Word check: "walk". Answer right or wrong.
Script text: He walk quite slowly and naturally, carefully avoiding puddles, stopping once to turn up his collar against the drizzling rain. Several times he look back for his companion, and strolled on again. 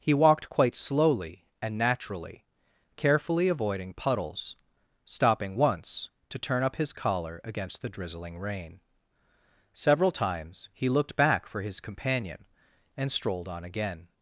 wrong